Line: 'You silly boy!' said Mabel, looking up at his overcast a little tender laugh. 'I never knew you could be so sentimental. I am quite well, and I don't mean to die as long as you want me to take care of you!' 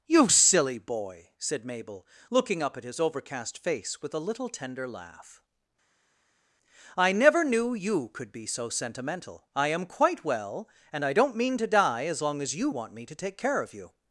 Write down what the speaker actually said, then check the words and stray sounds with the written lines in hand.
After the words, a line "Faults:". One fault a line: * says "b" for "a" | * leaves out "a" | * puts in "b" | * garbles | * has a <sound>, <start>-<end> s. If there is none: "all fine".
'You silly boy!' said Mabel, looking up at his overcast face with a little tender laugh. 'I never knew you could be so sentimental. I am quite well, and I don't mean to die as long as you want me to take care of you!'
Faults:
* puts in "face with"